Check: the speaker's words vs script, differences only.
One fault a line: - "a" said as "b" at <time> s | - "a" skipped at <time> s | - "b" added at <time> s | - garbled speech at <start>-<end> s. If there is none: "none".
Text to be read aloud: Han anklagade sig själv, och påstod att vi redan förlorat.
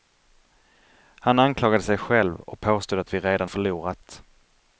none